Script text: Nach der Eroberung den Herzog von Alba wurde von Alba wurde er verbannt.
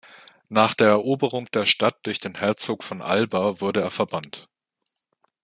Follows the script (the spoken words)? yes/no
no